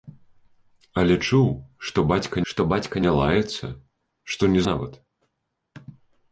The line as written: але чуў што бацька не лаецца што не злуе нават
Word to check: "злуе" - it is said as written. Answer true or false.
false